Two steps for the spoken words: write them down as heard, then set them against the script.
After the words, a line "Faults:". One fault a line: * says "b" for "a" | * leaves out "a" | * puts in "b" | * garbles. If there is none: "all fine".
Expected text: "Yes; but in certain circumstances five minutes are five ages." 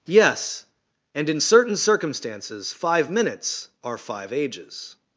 "Yes; and in certain circumstances five minutes are five ages."
Faults:
* says "and" for "but"